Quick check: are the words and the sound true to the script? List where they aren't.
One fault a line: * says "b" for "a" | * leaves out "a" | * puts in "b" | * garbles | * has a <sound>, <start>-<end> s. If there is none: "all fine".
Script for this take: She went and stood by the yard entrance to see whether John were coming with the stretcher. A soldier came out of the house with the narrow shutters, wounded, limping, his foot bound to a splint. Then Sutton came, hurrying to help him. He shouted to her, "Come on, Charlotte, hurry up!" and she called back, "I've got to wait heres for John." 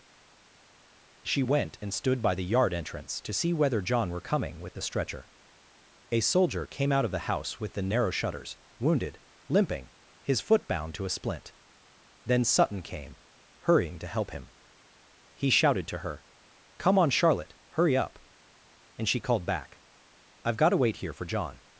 * says "here" for "heres"